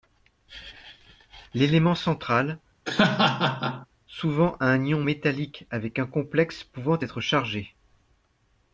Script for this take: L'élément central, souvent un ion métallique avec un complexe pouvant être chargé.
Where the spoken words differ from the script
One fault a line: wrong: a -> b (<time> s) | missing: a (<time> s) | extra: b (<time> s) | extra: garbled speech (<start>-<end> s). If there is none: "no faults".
no faults